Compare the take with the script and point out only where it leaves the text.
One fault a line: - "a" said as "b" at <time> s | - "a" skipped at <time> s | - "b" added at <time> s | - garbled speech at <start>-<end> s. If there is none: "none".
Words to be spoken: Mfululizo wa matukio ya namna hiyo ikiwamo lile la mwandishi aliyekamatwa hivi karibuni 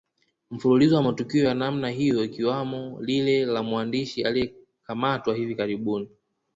none